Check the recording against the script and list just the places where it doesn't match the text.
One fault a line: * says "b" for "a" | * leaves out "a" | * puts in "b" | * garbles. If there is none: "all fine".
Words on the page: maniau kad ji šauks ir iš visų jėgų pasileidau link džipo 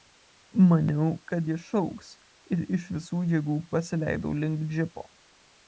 all fine